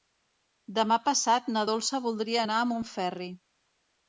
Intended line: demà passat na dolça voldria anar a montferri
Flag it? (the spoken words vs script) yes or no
no